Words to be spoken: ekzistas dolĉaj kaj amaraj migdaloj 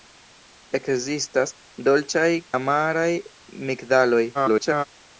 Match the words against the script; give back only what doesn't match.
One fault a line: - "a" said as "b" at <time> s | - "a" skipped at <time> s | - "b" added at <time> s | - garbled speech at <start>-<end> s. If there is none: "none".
- "kaj" skipped at 2.3 s
- garbled speech at 4.3-4.8 s